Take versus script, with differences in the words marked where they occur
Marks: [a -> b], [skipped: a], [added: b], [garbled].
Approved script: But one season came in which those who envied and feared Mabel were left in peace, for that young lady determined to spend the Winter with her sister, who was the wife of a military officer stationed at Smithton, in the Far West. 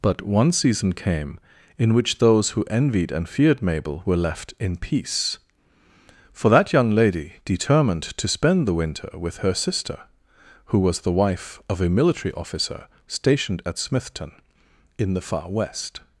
But one season came in which those who envied and feared Mabel were left in peace, for that young lady determined to spend the Winter with her sister, who was the wife of a military officer stationed at Smithton, in the Far West.